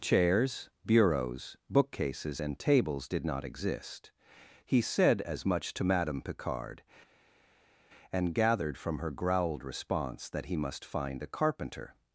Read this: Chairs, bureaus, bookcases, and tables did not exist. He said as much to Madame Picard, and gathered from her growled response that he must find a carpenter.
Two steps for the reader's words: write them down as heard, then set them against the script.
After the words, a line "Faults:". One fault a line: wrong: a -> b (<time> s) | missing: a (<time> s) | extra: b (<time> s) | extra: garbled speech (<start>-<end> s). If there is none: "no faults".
Chairs, bureaus, bookcases, and tables did not exist. He said as much to Madame Picard, and gathered from her growled response that he must find a carpenter.
Faults:
no faults